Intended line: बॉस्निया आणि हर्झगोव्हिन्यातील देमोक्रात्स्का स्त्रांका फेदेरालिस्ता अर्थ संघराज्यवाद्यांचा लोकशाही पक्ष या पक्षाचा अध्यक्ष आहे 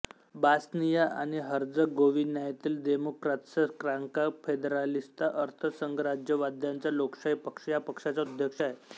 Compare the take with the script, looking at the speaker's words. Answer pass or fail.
pass